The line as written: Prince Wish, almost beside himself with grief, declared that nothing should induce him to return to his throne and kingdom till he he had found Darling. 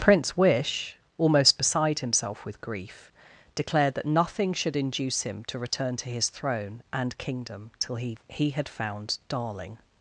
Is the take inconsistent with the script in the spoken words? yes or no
no